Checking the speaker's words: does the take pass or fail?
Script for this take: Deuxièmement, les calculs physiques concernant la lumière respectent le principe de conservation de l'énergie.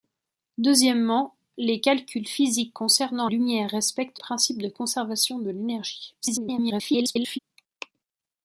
fail